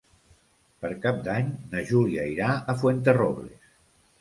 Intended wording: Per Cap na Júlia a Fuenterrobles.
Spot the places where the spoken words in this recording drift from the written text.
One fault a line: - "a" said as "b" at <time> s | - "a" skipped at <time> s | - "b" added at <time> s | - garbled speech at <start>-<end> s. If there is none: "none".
- "d'Any" added at 1.3 s
- "irà" added at 2.3 s